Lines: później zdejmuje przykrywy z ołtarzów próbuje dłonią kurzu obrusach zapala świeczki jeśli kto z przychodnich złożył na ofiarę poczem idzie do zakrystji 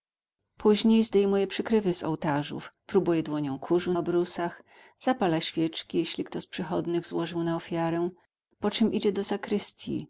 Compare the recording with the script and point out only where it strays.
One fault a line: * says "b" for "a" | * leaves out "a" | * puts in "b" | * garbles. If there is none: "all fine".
all fine